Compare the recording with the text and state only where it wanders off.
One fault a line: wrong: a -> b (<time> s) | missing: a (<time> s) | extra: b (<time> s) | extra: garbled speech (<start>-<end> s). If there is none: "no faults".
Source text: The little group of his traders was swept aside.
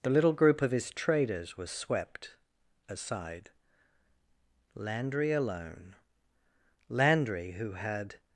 extra: Landry alone Landry who had (4.7 s)